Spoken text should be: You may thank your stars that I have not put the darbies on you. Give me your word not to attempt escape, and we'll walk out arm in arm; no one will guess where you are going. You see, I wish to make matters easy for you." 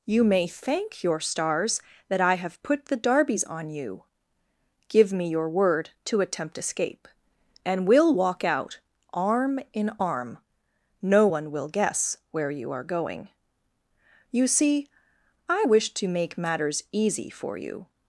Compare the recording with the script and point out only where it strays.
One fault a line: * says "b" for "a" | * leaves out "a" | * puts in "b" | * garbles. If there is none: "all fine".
* leaves out "not"
* leaves out "not"